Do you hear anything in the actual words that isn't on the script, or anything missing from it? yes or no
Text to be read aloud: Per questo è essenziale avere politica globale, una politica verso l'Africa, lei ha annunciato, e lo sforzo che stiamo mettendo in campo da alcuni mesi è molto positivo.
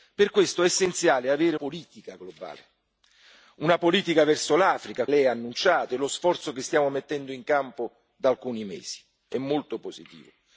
no